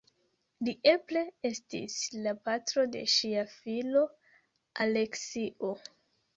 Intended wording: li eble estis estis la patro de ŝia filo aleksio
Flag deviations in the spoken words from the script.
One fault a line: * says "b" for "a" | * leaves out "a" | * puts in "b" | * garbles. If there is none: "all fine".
* leaves out "estis"